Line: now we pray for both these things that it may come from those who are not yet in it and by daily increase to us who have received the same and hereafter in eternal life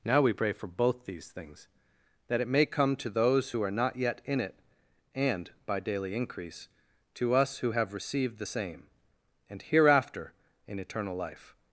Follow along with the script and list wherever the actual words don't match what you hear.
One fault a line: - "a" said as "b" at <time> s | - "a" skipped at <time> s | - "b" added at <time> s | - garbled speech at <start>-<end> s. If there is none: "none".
- "from" said as "to" at 3.0 s